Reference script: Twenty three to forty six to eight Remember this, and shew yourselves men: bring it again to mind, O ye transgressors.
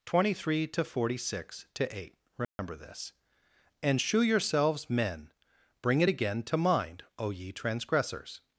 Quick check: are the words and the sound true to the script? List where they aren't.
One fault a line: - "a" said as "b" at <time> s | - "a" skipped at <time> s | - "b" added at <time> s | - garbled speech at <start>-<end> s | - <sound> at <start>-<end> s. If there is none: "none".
- dropout at 2.4-2.6 s